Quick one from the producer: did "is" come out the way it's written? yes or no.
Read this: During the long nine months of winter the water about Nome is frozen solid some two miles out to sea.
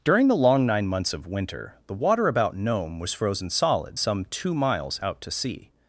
no